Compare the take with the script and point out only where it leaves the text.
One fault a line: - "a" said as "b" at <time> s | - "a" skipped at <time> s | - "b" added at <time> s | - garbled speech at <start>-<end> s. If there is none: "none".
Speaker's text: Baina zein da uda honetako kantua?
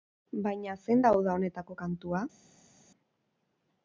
none